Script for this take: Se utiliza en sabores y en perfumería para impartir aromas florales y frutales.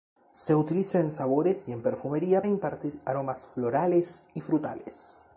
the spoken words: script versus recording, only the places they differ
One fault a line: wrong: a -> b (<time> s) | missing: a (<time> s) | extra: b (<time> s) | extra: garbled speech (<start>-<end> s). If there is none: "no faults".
missing: para (2.4 s)